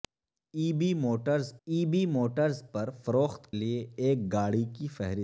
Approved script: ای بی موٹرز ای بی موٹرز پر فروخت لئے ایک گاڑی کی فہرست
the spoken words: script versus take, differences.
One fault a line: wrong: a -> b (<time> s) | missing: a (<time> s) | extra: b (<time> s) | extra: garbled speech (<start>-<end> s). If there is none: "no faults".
no faults